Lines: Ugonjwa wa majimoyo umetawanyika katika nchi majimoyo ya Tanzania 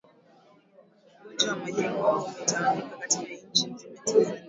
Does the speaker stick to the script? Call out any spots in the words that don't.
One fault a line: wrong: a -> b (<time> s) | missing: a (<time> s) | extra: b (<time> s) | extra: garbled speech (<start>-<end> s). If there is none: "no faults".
wrong: majimoyo -> nzima (3.7 s)